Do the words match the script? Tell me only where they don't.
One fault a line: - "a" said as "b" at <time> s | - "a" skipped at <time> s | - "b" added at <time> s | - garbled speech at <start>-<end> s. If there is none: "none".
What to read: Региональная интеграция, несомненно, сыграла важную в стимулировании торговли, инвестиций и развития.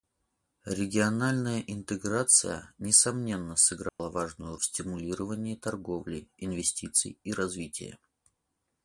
none